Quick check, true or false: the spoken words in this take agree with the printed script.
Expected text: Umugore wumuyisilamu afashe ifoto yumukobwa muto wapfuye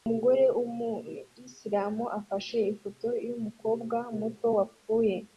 true